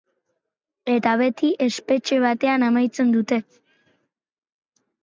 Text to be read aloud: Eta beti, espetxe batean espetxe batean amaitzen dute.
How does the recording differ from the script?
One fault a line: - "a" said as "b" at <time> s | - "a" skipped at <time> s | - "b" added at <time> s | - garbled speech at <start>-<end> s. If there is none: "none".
- "espetxe batean" skipped at 2.7 s